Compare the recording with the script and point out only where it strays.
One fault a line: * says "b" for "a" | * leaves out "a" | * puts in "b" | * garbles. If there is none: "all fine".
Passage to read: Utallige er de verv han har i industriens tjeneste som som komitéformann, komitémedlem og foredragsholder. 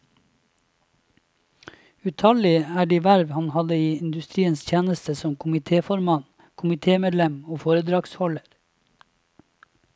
* says "hadde" for "har"
* leaves out "som"